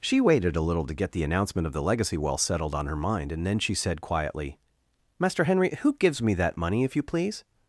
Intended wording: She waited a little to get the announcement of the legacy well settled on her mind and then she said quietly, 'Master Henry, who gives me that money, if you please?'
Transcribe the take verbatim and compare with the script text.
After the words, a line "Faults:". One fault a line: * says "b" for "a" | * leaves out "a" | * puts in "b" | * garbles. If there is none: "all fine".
She waited a little to get the announcement of the legacy well settled on her mind and then she said quietly, 'Master Henry, who gives me that money, if you please?'
Faults:
all fine